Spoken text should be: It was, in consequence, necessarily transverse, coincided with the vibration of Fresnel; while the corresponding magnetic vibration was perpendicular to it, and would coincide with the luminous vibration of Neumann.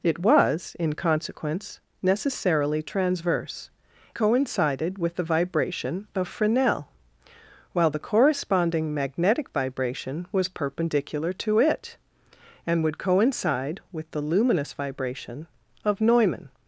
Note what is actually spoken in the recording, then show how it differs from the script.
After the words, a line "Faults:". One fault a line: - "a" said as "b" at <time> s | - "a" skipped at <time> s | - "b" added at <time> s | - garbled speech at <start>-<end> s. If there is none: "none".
It was, in consequence, necessarily transverse, coincided with the vibration of Fresnel; while the corresponding magnetic vibration was perpendicular to it, and would coincide with the luminous vibration of Neumann.
Faults:
none